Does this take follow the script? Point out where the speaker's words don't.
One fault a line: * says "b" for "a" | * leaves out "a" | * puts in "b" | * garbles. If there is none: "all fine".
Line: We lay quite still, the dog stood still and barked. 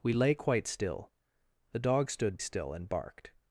all fine